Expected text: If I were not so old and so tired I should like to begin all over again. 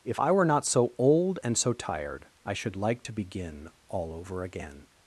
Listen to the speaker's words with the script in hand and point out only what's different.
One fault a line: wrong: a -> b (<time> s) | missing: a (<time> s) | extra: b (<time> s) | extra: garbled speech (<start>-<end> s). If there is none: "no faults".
no faults